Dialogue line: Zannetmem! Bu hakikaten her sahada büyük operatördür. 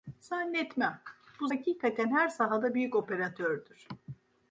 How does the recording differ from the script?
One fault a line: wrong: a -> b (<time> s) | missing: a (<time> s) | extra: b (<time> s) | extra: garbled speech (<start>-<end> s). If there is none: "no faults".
no faults